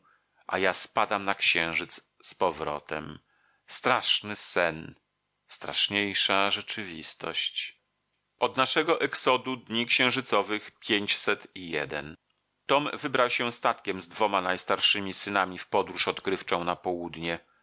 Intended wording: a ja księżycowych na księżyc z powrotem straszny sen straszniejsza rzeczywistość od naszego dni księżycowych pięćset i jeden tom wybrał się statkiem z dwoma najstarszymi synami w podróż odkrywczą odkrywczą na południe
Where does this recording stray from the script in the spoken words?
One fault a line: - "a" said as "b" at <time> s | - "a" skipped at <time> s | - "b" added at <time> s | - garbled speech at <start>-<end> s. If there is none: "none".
- "księżycowych" said as "spadam" at 0.7 s
- "exodu" added at 9.0 s
- "odkrywczą" skipped at 16.6 s